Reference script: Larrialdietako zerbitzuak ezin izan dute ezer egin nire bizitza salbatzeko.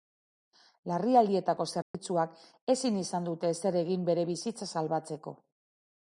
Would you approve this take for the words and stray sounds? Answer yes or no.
no